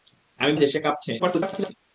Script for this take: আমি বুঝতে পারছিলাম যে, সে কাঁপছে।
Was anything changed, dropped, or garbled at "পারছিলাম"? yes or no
yes